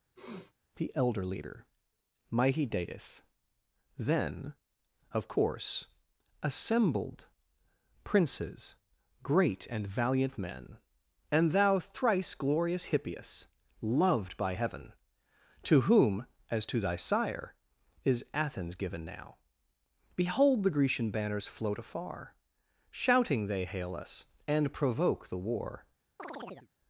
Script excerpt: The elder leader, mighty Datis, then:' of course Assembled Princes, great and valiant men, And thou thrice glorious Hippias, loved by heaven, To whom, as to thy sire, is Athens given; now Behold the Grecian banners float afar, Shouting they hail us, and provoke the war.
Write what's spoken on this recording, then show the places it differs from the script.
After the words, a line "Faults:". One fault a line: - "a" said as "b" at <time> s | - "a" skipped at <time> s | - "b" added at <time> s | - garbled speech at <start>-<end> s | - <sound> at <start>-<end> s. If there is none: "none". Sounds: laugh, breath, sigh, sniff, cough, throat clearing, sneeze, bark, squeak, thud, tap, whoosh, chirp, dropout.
The elder leader, mighty Datis, then:' of course Assembled Princes, great and valiant men, And thou thrice glorious Hippias, loved by heaven, To whom, as to thy sire, is Athens given; now Behold the Grecian banners float afar, Shouting they hail us, and provoke the war.
Faults:
- sniff at 0.2-0.5 s
- chirp at 26.2-26.7 s